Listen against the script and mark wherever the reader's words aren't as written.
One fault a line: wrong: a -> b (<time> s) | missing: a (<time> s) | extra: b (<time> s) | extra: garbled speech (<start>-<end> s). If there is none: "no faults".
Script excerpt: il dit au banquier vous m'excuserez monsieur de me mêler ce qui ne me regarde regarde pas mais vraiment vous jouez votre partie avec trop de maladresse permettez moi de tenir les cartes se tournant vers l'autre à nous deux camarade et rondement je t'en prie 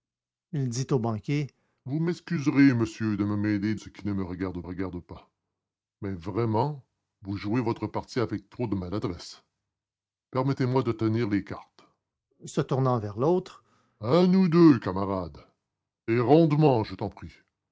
no faults